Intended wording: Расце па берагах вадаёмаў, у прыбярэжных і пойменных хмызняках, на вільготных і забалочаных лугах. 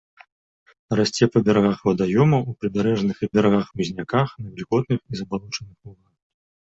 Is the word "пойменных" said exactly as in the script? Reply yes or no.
no